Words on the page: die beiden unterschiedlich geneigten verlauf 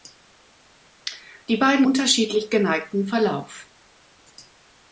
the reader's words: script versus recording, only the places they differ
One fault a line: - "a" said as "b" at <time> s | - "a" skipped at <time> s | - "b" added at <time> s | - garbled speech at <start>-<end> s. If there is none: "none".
none